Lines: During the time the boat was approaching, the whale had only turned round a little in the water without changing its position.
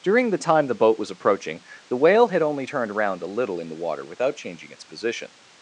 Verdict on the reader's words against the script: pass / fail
fail